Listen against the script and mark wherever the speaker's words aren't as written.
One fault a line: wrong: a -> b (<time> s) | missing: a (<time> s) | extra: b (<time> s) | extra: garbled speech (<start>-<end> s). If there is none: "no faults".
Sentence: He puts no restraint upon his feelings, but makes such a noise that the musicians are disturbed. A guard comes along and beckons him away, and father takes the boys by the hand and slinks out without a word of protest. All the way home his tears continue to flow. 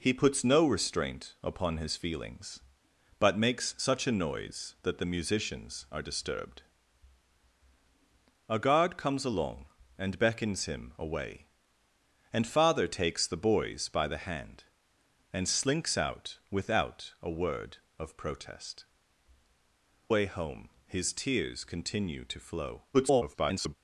missing: All the (18.8 s)
extra: garbled speech (22.9-23.8 s)